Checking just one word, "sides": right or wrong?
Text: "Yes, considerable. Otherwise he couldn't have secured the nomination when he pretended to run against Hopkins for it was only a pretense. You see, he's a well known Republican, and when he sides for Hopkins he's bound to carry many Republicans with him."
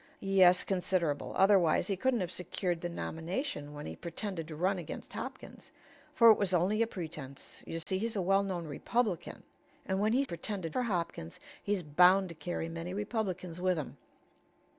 wrong